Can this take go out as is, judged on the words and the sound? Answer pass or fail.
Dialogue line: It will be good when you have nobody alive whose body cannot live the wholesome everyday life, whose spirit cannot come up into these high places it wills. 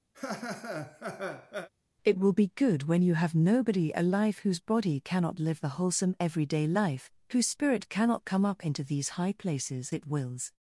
fail